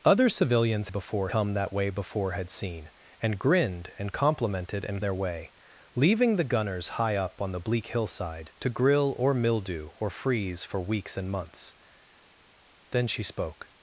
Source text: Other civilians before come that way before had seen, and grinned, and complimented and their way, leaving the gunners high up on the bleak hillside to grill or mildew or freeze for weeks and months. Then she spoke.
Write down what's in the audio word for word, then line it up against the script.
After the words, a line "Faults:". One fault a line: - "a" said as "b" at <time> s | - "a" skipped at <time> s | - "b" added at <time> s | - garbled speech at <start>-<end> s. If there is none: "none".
Other civilians before come that way before had seen, and grinned, and complimented and their way, leaving the gunners high up on the bleak hillside to grill or mildew or freeze for weeks and months. Then she spoke.
Faults:
none